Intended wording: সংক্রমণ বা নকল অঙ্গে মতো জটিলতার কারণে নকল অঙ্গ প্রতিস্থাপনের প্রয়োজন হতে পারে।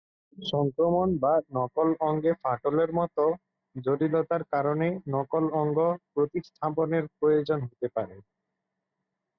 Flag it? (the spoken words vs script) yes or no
yes